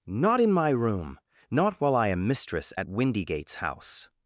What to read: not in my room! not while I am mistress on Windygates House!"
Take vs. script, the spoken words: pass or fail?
fail